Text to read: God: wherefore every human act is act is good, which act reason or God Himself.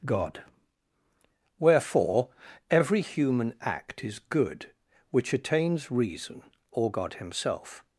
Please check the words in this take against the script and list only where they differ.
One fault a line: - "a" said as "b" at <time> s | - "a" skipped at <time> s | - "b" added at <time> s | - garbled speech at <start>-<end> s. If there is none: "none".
- "act is" skipped at 4.2 s
- "act" said as "attains" at 5.3 s